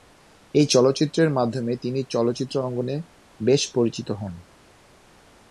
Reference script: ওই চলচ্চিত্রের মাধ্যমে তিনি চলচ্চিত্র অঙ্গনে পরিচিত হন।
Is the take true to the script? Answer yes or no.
no